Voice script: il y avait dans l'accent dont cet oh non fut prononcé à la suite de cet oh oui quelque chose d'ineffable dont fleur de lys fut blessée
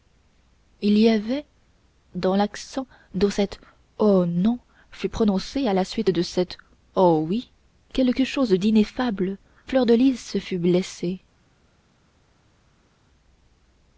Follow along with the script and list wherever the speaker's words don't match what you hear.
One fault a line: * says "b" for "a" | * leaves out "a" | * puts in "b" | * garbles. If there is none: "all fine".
* leaves out "dont"